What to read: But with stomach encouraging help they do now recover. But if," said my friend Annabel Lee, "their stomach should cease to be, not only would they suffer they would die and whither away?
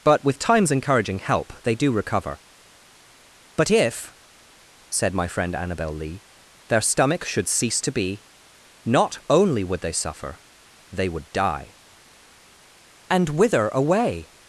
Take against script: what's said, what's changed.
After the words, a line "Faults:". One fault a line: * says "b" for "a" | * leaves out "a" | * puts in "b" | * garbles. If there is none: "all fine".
But with time's encouraging help they do recover. But if," said my friend Annabel Lee, "their stomach should cease to be, not only would they suffer they would die and whither away?
Faults:
* says "time's" for "stomach"
* leaves out "now"